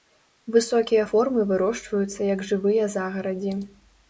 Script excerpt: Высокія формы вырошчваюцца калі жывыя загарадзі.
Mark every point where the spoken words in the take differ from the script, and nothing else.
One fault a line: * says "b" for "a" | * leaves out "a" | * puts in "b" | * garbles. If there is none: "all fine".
* says "як" for "калі"